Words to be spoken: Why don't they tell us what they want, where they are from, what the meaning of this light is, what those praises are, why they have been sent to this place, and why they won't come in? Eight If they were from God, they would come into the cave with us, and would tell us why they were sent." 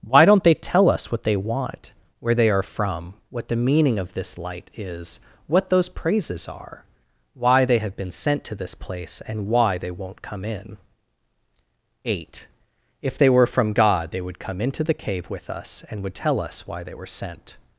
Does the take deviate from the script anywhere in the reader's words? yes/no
no